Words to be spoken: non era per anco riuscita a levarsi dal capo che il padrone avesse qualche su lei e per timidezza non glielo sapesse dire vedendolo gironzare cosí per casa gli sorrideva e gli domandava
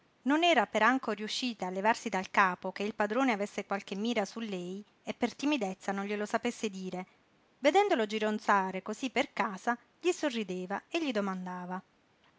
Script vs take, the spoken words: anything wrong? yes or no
yes